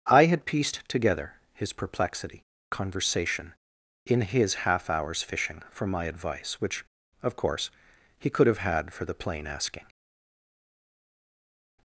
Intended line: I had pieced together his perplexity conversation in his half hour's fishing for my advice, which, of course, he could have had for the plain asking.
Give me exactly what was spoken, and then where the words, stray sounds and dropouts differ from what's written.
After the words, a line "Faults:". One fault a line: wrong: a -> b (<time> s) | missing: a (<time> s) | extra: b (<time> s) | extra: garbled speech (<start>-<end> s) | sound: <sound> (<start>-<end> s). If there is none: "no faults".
I had pieced together his perplexity conversation in his half hour's fishing for my advice, which, of course, he could have had for the plain asking.
Faults:
no faults